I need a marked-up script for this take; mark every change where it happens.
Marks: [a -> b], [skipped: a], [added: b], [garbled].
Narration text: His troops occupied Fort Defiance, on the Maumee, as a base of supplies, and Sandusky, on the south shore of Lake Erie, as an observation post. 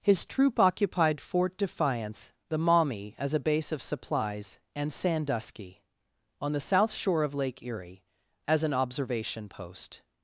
His [troops -> troop] occupied Fort Defiance, [skipped: on] the Maumee, as a base of supplies, and Sandusky, on the south shore of Lake Erie, as an observation post.